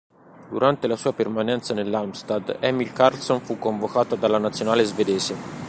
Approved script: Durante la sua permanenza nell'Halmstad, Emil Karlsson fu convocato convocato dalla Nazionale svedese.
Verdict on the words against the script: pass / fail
fail